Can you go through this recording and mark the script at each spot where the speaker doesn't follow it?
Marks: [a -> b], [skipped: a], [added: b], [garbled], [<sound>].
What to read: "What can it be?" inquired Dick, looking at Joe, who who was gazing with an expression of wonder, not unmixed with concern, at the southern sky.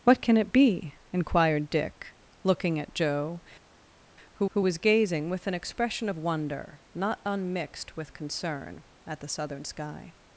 "What can it be?" inquired Dick, looking at Joe, who who was gazing with an expression of wonder, not unmixed with concern, at the southern sky.